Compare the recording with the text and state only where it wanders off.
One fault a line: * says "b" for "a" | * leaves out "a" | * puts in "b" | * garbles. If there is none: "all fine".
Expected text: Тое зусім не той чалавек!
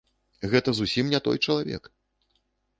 * says "Гэта" for "Тое"